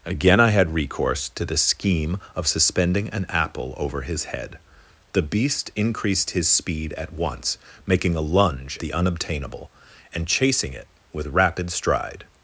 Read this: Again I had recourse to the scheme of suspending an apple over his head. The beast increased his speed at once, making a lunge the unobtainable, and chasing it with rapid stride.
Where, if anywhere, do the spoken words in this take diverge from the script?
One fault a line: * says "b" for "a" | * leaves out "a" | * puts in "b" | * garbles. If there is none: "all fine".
all fine